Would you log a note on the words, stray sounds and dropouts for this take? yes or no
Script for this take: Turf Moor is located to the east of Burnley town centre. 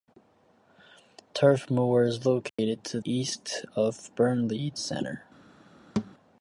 yes